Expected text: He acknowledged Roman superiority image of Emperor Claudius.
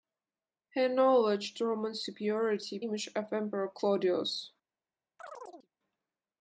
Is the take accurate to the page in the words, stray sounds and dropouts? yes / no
no